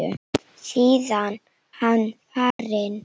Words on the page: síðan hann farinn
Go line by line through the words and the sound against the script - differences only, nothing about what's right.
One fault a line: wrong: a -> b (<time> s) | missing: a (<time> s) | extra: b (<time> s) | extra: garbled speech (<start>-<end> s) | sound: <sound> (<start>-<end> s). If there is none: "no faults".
sound: dropout (2.5-2.6 s)